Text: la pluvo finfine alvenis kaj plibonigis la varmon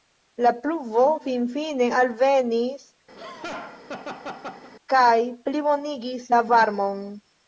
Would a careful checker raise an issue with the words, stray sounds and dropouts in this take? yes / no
yes